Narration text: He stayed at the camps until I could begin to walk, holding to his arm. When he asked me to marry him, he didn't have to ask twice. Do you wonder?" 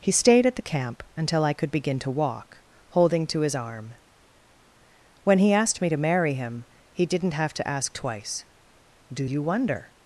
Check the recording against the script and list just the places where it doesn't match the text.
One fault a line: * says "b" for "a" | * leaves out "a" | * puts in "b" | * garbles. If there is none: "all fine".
* says "camp" for "camps"